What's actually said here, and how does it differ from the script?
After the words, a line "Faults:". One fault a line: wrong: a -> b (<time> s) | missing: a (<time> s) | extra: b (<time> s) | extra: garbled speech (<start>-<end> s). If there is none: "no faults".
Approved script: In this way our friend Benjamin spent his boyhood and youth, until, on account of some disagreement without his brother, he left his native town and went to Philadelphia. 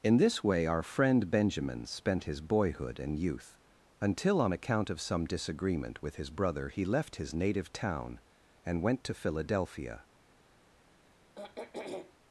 In this way our friend Benjamin spent his boyhood and youth, until, on account of some disagreement with his brother, he left his native town and went to Philadelphia.
Faults:
wrong: without -> with (6.0 s)